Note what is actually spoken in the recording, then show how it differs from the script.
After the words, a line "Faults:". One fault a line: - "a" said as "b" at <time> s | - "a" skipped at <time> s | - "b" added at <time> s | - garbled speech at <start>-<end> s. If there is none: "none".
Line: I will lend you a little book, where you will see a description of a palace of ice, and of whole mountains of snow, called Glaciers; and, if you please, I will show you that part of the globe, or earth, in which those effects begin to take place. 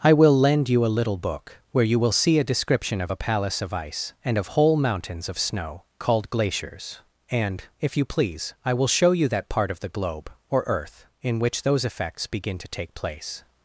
I will lend you a little book, where you will see a description of a palace of ice, and of whole mountains of snow, called Glaciers; and, if you please, I will show you that part of the globe, or earth, in which those effects begin to take place.
Faults:
none